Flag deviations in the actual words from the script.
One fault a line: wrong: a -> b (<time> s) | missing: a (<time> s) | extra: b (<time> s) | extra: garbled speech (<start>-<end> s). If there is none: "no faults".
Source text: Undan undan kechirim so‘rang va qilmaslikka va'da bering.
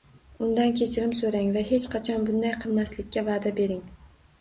missing: undan (0.7 s)
extra: hech qachon bunday (1.7 s)